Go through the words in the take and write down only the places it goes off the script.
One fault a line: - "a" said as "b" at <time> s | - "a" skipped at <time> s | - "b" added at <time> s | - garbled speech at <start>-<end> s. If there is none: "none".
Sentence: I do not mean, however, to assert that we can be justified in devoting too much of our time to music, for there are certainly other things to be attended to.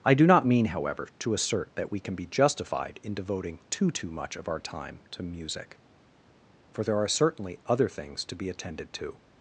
- "too" added at 3.9 s